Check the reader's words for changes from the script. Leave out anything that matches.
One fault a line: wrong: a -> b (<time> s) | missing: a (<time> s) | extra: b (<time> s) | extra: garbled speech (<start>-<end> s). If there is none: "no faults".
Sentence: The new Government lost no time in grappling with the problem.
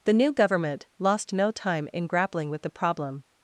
no faults